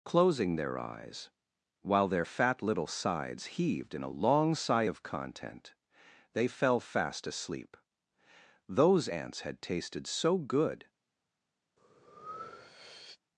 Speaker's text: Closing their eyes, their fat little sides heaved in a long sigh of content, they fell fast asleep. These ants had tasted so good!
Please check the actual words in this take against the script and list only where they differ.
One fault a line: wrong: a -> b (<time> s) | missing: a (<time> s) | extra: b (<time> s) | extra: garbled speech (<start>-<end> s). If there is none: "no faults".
extra: while (1.8 s)
wrong: These -> Those (8.7 s)